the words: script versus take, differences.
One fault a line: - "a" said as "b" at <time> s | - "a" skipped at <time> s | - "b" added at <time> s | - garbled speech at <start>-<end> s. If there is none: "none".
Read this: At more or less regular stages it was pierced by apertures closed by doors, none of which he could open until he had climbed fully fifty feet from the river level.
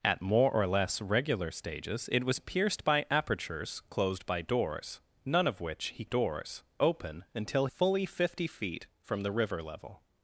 - "could" said as "doors" at 6.0 s
- "he had climbed" skipped at 7.7 s